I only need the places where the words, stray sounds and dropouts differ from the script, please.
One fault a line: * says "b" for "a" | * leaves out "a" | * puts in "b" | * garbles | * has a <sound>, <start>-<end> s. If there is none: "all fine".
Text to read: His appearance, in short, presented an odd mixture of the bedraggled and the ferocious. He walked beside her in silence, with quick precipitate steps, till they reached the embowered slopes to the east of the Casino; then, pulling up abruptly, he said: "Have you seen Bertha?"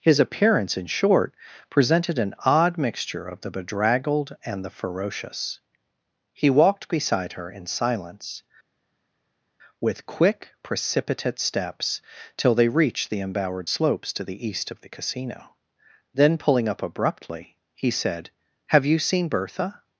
all fine